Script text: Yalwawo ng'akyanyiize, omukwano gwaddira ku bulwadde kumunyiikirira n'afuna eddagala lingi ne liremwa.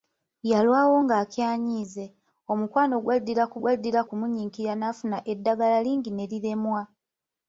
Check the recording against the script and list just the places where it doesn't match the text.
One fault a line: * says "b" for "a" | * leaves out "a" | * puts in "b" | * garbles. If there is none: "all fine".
* says "gwaddira" for "bulwadde"